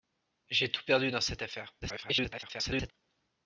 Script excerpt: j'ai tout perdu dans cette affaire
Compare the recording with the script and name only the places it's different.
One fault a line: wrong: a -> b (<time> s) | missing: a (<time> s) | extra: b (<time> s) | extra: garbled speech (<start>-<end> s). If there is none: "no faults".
extra: garbled speech (1.8-2.9 s)